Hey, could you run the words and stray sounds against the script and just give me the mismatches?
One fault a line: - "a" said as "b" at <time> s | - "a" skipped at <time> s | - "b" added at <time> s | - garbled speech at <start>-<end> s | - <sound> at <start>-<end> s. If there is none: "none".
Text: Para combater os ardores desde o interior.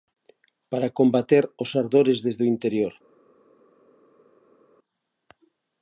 none